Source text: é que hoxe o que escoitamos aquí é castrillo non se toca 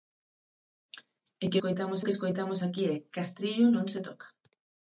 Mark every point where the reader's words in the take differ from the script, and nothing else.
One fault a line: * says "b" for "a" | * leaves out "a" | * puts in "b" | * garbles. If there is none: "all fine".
* says "escoitamos" for "hoxe"